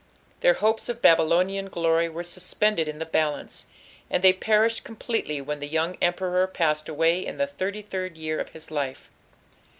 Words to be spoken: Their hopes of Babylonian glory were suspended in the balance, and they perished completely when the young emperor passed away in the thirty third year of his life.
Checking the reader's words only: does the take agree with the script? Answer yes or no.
yes